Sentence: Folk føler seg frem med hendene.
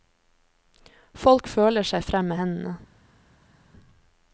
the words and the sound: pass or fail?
pass